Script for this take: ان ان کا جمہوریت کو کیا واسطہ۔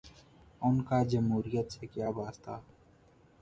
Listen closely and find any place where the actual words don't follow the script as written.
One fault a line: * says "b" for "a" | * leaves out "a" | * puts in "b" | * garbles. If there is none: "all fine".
* leaves out "ان"
* says "سے" for "کو"